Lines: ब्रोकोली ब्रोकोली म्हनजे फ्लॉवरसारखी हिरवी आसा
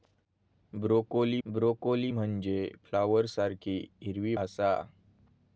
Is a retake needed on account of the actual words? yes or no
no